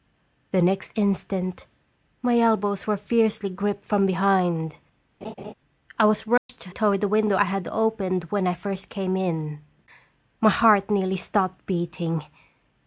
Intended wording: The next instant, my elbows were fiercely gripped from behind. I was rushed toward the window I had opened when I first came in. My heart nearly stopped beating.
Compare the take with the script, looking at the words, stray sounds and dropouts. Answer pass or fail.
fail